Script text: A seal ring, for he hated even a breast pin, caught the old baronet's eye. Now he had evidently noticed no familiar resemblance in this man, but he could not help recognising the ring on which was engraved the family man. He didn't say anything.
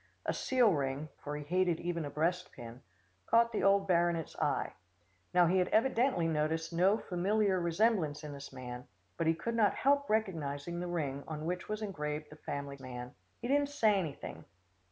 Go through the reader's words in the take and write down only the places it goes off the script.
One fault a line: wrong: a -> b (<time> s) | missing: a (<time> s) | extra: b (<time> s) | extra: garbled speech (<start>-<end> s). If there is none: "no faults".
no faults